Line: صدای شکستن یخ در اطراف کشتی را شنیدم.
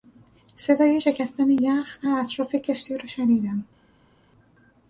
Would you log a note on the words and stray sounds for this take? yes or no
no